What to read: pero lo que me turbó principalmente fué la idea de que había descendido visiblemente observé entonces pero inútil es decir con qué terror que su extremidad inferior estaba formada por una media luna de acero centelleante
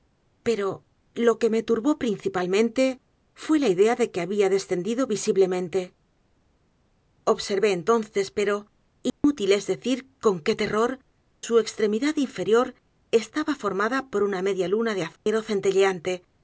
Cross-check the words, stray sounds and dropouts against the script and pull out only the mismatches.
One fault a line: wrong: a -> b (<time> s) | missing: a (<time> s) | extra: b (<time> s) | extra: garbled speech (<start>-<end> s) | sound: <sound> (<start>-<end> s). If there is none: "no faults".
sound: dropout (9.1-9.2 s)
missing: que (11.0 s)
sound: dropout (15.2-15.3 s)